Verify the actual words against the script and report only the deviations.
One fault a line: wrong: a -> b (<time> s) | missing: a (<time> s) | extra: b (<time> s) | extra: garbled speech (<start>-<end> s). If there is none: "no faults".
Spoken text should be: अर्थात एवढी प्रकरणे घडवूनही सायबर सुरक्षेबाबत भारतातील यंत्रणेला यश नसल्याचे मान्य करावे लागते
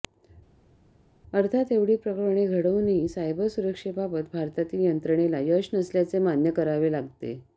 no faults